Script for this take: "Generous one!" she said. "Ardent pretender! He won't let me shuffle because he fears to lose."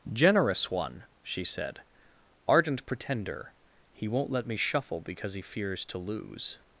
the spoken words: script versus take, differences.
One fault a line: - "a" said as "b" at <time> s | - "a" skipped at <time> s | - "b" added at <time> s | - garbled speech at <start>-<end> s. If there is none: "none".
none